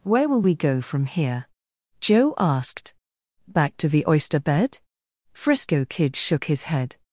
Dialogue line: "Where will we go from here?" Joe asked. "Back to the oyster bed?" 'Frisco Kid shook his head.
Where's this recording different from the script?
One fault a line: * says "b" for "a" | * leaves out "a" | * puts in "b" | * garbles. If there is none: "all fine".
all fine